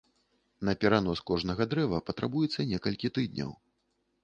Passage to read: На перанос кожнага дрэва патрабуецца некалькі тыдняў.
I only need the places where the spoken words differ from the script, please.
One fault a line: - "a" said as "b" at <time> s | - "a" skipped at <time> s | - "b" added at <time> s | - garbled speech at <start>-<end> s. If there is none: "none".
none